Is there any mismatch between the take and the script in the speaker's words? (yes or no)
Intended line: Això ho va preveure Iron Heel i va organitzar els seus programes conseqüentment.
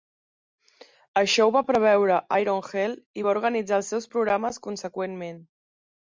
no